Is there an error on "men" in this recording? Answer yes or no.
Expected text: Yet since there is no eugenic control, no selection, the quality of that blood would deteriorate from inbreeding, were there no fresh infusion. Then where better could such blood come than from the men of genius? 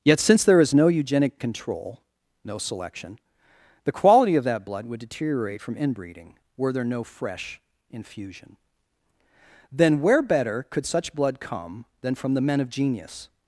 no